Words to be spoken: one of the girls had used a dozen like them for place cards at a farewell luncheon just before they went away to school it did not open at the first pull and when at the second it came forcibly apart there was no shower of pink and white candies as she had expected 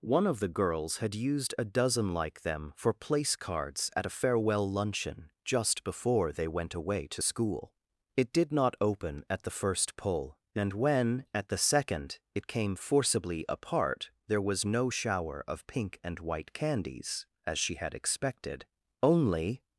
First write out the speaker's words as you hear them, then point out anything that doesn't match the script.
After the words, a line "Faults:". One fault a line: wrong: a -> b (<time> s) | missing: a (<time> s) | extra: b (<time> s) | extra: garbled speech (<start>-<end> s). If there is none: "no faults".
one of the girls had used a dozen like them for place cards at a farewell luncheon just before they went away to school it did not open at the first pull and when at the second it came forcibly apart there was no shower of pink and white candies as she had expected only
Faults:
extra: only (19.0 s)